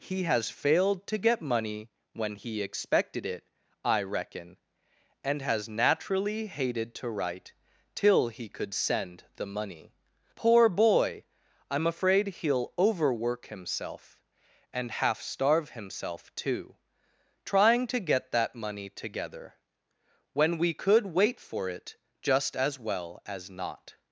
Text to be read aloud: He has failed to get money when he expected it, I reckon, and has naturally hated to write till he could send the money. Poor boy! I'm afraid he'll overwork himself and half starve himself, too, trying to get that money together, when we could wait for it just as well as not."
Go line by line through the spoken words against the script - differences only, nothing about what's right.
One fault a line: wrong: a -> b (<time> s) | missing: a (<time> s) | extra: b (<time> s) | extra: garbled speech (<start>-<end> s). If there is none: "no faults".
no faults